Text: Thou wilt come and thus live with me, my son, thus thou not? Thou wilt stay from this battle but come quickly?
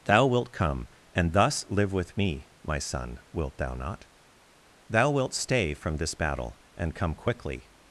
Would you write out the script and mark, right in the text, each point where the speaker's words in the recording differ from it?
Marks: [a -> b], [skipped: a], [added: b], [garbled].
Thou wilt come and thus live with me, my son, [thus -> wilt] thou not? Thou wilt stay from this battle [but -> and] come quickly?